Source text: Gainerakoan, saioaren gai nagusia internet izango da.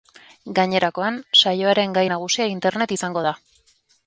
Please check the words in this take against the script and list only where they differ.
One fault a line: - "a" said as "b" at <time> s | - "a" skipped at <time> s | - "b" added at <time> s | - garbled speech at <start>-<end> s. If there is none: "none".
none